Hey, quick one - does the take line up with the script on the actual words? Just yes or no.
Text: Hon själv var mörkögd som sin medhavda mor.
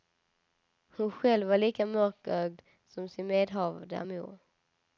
no